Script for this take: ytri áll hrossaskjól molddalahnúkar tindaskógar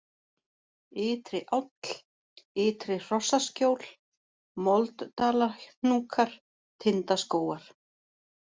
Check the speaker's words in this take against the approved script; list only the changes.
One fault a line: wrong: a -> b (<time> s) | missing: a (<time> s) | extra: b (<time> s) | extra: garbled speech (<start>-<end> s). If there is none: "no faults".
extra: ytri (2.5 s)